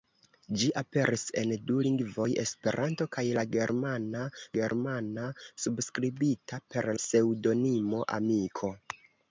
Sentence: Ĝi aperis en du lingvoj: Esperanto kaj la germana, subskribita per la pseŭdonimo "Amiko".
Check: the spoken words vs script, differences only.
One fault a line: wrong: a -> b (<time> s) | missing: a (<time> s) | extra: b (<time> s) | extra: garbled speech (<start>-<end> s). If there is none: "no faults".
extra: germana (4.6 s)
missing: la (6.9 s)